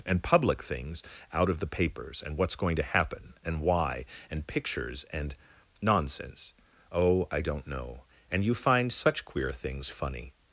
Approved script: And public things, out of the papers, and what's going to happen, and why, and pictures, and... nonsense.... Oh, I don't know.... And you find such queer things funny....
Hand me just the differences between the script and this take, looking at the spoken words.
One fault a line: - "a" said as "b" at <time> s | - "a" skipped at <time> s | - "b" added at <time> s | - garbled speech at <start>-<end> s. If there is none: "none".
none